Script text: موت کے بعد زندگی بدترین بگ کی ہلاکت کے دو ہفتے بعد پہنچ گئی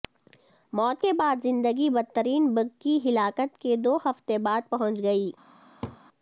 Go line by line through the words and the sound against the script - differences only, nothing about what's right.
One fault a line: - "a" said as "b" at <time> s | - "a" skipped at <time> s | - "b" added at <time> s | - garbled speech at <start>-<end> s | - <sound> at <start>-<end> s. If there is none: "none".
- laugh at 5.8-6.0 s